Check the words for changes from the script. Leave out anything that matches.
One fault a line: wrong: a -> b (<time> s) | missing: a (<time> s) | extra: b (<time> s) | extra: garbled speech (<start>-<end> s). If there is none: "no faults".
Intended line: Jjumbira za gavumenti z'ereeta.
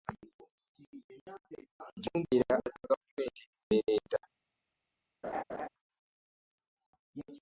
no faults